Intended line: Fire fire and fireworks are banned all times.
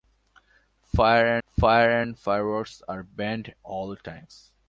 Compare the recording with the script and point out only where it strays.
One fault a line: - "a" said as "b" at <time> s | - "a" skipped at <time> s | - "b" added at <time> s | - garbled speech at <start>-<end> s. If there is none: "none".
none